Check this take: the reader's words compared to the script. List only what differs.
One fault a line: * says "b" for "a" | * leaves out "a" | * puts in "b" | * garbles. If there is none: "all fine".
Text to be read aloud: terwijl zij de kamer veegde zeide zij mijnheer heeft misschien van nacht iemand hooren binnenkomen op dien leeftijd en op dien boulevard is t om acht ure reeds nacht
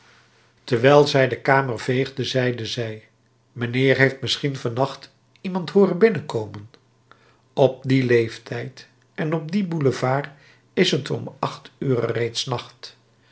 all fine